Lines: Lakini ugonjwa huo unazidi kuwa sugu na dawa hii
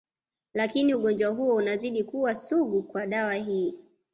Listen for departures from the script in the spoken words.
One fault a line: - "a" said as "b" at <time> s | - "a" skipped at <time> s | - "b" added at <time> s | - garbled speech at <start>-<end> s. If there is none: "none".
- "na" said as "kwa" at 2.8 s